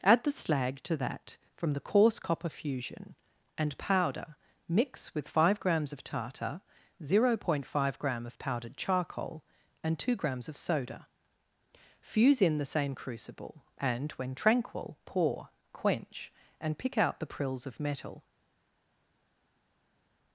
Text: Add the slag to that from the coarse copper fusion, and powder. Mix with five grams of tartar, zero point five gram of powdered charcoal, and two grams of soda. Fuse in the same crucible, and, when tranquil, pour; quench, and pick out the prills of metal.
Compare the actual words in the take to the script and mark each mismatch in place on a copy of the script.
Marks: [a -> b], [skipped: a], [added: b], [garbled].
Add the slag to that from the coarse copper fusion, and powder. Mix with five grams of tartar, zero point five gram of powdered charcoal, and two grams of soda. Fuse in the same crucible, and, when tranquil, pour; quench, and pick out the prills of metal.